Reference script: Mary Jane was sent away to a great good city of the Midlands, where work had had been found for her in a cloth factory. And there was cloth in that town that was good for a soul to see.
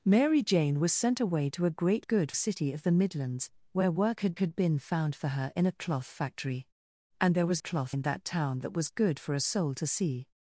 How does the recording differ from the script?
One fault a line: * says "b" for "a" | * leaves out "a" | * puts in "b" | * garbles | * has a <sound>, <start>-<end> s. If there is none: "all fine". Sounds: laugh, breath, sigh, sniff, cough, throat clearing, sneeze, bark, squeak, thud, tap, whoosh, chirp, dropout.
all fine